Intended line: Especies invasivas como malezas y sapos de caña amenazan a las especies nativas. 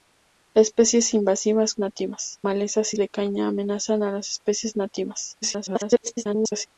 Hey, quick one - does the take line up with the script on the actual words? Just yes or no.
no